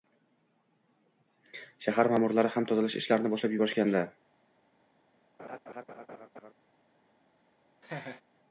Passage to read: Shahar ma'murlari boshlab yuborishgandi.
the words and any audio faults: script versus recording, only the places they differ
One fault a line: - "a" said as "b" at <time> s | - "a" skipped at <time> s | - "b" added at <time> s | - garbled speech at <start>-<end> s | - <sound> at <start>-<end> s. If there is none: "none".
- "ham tozalash ishlarini" added at 2.6 s
- laugh at 5.4-6.5 s
- laugh at 7.8-8.2 s